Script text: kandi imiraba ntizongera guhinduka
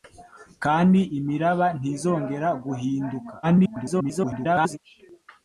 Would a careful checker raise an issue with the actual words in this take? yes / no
yes